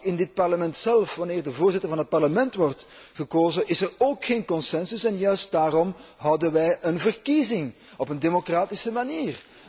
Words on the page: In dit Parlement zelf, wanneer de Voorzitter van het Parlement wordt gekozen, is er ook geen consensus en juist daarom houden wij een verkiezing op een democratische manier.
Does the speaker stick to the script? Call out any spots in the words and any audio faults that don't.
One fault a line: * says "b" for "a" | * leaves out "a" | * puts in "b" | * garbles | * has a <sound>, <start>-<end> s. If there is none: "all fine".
all fine